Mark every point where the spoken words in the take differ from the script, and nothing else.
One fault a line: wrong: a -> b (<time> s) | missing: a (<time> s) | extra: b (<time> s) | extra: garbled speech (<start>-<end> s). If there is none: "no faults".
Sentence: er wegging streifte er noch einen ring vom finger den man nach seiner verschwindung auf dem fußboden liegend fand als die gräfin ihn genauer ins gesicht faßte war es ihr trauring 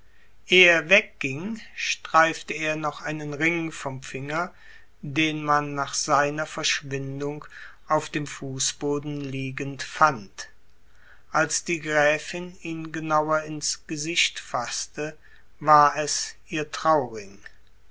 no faults